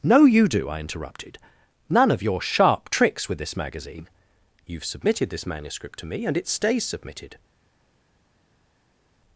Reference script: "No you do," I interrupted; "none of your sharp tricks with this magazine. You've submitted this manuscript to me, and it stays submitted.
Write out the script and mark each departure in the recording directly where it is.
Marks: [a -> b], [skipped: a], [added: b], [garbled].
"No you do," I interrupted; "none of your sharp tricks with this magazine. You've submitted this manuscript to me, and it stays submitted.